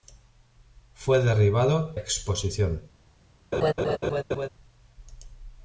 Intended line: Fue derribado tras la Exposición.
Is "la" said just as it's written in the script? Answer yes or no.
no